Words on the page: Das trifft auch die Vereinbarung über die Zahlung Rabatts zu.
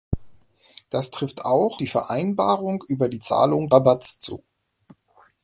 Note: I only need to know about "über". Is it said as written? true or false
true